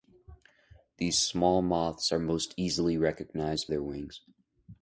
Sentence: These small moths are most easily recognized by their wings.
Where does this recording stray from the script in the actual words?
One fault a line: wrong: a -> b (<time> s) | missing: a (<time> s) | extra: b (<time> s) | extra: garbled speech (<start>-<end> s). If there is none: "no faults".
missing: by (3.7 s)